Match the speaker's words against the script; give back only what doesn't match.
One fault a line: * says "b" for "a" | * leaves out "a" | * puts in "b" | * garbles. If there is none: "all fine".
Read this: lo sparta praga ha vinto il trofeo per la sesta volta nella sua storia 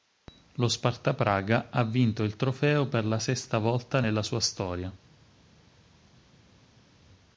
all fine